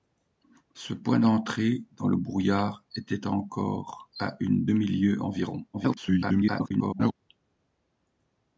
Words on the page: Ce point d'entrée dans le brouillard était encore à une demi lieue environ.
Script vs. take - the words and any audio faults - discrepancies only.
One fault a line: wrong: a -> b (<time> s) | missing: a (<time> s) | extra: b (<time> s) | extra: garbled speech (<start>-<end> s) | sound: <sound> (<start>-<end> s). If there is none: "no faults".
extra: garbled speech (5.7-7.1 s)